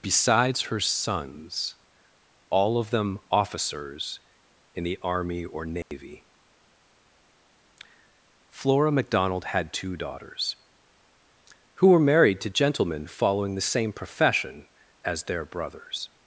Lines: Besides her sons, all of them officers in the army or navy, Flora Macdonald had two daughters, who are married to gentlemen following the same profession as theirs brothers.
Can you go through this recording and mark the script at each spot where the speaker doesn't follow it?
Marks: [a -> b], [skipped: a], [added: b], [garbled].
Besides her sons, all of them officers in the army or navy, Flora Macdonald had two daughters, who [are -> were] married to gentlemen following the same profession as [theirs -> their] brothers.